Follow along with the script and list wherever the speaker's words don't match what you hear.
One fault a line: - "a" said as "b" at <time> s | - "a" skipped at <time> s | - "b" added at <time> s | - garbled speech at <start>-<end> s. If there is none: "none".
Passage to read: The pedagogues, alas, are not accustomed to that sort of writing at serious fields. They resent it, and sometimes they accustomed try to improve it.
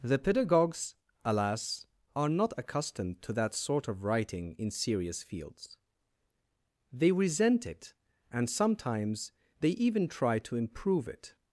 - "at" said as "in" at 4.6 s
- "accustomed" said as "even" at 9.7 s